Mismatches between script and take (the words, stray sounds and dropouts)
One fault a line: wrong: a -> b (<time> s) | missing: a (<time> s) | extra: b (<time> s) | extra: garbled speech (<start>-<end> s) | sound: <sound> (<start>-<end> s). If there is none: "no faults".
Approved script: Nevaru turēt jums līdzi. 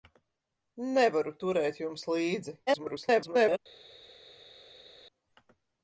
extra: garbled speech (2.7-3.6 s)